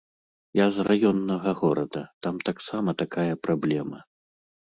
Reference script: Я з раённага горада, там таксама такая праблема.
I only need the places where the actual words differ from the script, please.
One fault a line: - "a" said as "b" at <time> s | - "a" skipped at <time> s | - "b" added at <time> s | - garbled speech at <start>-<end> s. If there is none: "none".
none